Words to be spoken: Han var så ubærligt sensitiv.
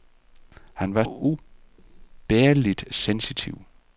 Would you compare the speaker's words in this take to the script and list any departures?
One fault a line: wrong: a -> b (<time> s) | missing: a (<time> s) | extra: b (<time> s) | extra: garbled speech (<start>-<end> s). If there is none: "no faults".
missing: så (1.0 s)